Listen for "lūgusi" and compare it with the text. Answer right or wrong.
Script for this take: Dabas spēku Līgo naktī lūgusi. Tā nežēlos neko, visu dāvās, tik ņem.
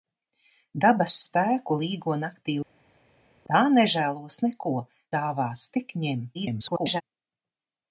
wrong